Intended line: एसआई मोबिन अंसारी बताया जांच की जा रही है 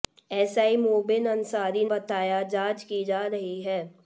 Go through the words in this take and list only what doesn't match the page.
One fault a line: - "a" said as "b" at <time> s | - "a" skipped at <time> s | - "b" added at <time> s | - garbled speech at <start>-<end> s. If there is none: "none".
none